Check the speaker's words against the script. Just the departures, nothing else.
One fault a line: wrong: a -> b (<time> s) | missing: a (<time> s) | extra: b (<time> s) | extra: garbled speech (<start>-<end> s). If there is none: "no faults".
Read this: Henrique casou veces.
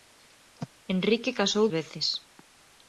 no faults